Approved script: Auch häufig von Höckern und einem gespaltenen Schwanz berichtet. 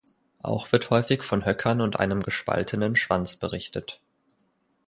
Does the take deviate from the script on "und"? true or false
false